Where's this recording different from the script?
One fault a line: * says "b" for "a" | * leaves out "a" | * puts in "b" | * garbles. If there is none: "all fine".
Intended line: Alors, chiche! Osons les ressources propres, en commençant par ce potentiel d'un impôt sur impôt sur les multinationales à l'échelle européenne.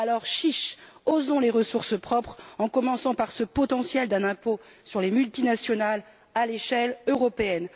* leaves out "impôt sur"